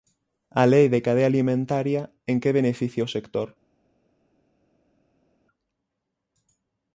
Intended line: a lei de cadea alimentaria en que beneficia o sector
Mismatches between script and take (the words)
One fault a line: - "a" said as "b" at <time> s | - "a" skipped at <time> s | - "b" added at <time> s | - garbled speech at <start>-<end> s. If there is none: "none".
none